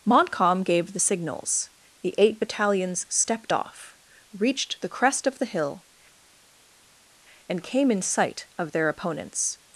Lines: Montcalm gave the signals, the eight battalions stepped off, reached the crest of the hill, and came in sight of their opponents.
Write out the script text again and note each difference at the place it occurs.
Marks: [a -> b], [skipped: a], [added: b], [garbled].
Montcalm gave the signals, the eight battalions stepped off, reached the crest of the hill, and came in sight of their opponents.